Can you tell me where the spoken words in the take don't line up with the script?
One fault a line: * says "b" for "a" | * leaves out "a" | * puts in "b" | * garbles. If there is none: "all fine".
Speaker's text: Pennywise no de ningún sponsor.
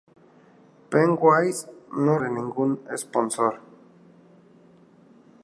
all fine